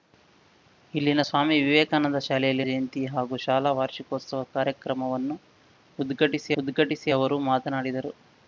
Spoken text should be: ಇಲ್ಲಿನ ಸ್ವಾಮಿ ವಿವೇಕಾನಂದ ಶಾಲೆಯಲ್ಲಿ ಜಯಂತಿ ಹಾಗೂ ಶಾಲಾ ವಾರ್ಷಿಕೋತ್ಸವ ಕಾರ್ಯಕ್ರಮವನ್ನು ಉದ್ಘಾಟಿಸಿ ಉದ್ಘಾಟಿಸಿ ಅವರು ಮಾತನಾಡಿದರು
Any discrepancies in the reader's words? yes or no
no